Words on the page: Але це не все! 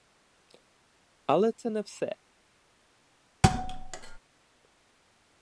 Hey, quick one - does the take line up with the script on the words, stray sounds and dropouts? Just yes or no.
no